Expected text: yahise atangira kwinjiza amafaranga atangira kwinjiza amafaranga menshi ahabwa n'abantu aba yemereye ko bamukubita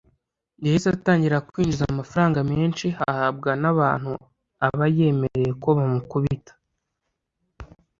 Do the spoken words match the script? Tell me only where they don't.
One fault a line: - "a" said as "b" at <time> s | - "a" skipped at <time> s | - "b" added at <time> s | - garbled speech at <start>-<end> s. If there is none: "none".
- "atangira kwinjiza amafaranga" skipped at 2.4 s